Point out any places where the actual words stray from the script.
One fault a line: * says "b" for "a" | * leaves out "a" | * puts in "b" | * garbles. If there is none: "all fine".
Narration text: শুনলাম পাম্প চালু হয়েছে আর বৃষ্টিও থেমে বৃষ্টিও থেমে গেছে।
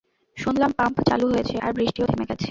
* leaves out "বৃষ্টিও থেমে"